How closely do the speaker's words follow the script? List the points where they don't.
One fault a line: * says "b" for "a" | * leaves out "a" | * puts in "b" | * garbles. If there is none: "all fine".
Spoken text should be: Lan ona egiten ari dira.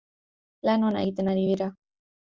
all fine